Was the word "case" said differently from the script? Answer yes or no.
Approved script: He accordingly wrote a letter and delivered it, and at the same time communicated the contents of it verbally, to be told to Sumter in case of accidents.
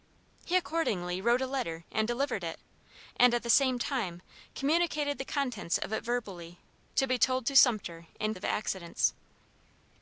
yes